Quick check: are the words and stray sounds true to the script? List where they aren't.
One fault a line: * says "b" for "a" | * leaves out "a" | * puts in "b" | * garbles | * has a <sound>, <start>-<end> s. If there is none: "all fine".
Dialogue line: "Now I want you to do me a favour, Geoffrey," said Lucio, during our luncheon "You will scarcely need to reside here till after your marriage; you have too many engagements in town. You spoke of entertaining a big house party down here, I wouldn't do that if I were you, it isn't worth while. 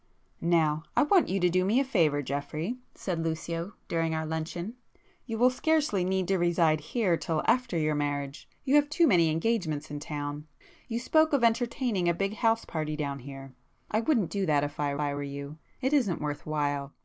* puts in "I"